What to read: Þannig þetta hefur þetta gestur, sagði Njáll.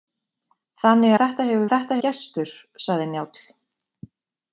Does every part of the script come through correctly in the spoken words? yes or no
yes